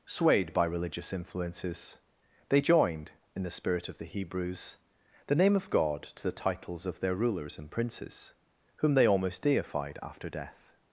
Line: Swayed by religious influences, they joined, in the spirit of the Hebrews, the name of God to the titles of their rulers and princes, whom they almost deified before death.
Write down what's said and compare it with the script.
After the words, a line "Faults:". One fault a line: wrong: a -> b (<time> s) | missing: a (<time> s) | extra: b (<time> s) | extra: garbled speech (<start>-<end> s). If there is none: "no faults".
Swayed by religious influences, they joined, in the spirit of the Hebrews, the name of God to the titles of their rulers and princes, whom they almost deified after death.
Faults:
wrong: before -> after (10.0 s)